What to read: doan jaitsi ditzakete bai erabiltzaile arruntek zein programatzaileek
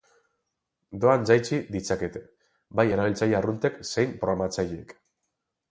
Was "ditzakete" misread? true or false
false